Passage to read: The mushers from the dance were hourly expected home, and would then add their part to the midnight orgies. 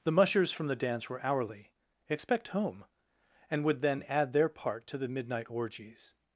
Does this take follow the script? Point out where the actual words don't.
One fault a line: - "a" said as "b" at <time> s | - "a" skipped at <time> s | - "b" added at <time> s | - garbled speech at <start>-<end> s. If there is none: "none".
- "expected" said as "expect" at 2.1 s